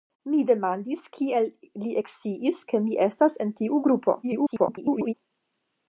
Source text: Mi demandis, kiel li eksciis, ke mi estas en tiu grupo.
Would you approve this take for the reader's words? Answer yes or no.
no